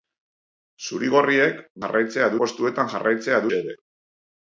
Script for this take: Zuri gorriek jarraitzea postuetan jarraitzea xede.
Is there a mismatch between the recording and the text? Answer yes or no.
no